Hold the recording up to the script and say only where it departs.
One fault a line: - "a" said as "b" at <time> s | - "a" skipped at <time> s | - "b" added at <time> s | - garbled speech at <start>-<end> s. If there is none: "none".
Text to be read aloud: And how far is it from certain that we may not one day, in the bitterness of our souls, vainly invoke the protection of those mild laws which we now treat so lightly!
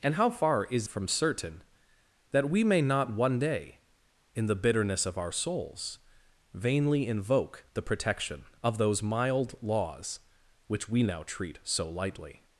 - "it" skipped at 0.9 s